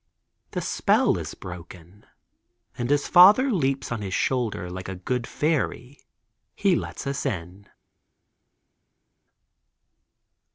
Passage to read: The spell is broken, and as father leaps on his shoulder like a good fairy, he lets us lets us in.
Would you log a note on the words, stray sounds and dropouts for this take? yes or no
yes